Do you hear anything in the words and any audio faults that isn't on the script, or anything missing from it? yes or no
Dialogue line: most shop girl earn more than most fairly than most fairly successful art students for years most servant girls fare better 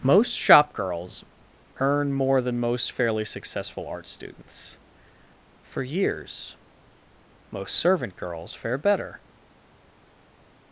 yes